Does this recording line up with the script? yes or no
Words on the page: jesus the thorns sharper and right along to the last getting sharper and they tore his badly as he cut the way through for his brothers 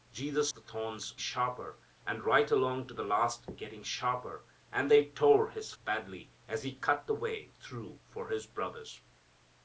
yes